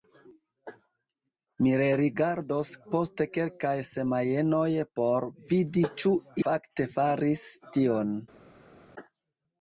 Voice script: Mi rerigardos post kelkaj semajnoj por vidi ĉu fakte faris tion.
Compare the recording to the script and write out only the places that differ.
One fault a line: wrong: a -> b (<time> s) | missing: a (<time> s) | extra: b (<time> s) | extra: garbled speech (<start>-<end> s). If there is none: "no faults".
no faults